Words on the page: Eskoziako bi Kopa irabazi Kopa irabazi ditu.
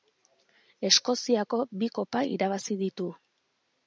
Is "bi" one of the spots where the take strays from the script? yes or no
no